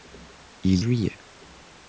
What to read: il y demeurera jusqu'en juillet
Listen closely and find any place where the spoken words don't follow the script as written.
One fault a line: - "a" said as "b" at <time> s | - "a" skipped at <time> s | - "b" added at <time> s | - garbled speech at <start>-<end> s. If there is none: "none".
- "y demeurera jusqu'en" skipped at 0.8 s